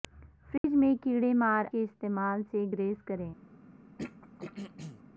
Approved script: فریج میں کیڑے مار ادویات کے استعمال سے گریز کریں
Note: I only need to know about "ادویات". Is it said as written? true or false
false